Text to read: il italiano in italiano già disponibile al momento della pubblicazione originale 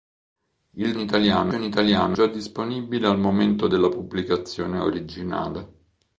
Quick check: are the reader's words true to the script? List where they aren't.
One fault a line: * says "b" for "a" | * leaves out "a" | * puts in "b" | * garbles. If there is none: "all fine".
all fine